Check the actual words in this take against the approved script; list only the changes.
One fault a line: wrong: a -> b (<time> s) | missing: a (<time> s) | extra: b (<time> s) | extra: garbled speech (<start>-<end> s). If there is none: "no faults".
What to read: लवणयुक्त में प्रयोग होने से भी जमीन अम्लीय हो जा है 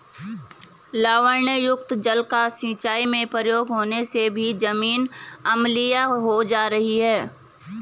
extra: जल का सिंचाई (2.0 s)
extra: रही (6.7 s)